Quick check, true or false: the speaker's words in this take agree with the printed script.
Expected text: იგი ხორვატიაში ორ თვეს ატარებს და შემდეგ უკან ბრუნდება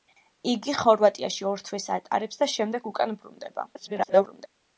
false